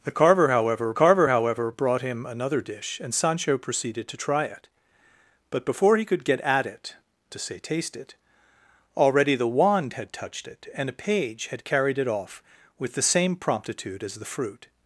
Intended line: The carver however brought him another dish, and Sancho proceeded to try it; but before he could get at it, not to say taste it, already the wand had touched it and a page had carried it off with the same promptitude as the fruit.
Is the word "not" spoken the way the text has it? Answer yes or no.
no